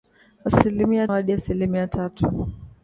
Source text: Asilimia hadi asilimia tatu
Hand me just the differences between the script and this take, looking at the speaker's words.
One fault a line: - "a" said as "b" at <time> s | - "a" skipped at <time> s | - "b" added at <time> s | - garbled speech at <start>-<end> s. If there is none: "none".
none